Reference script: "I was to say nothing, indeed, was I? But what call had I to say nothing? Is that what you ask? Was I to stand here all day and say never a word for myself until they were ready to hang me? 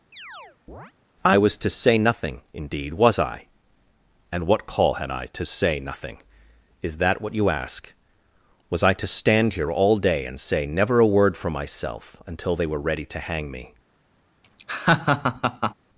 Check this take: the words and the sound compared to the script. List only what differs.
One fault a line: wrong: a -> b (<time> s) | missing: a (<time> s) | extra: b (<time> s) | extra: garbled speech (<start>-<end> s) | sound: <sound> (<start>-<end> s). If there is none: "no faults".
sound: chirp (0.1-0.9 s)
wrong: But -> And (4.3 s)
sound: laugh (14.4-15.7 s)